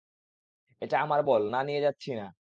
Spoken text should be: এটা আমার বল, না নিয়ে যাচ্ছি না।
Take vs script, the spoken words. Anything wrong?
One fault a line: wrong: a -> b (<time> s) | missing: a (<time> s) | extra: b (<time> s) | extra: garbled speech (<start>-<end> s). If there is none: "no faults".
no faults